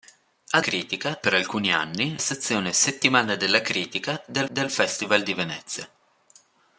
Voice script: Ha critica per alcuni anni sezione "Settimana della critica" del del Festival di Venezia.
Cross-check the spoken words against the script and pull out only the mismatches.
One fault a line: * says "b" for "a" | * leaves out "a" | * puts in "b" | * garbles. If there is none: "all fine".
all fine